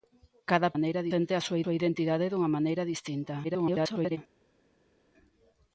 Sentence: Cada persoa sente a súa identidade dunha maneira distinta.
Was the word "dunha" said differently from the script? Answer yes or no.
no